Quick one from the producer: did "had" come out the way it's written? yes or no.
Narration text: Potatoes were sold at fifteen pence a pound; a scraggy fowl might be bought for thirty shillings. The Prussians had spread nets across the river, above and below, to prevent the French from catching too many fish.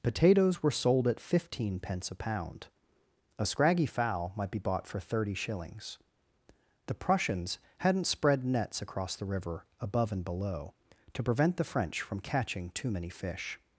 no